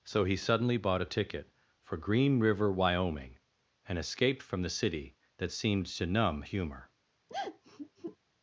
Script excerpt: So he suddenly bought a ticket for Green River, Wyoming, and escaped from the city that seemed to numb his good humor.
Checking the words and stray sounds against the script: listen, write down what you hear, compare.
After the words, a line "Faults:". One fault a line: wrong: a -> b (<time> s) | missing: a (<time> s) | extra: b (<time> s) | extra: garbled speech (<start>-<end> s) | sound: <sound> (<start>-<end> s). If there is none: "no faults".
So he suddenly bought a ticket for Green River, Wyoming, and escaped from the city that seemed to numb humor.
Faults:
missing: his good (6.4 s)
sound: sigh (7.3-8.2 s)